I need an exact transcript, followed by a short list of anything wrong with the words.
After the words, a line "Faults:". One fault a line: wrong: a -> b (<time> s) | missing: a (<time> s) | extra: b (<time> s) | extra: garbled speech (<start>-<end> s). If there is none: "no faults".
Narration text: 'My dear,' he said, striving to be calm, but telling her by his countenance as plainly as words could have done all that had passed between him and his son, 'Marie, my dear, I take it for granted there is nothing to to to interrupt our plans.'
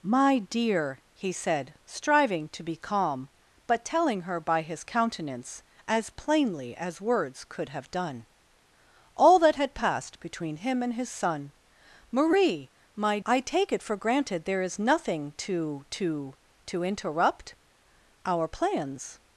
'My dear,' he said, striving to be calm, but telling her by his countenance as plainly as words could have done all that had passed between him and his son, 'Marie, my I take it for granted there is nothing to to to interrupt our plans.'
Faults:
missing: dear (13.2 s)